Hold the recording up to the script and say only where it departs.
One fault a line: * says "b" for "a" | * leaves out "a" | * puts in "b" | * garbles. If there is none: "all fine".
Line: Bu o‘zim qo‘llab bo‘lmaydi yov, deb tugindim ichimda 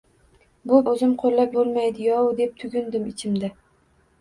all fine